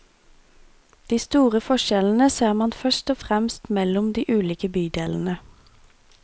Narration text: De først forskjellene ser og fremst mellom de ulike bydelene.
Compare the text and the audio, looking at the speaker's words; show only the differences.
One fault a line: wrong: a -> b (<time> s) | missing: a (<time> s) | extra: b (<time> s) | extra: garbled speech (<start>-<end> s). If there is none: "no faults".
wrong: først -> store (1.2 s)
extra: man først (2.5 s)